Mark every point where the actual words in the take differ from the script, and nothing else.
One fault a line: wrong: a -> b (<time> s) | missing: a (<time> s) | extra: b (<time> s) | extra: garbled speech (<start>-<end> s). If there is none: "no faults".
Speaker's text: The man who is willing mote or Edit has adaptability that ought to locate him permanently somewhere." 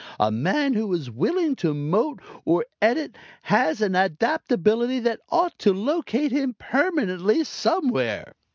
wrong: The -> A (0.2 s)
extra: to (1.6 s)
extra: an (3.8 s)